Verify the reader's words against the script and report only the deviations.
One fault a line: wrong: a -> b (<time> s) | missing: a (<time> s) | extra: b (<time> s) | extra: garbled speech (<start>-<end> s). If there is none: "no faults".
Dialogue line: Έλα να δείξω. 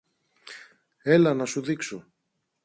extra: σου (1.4 s)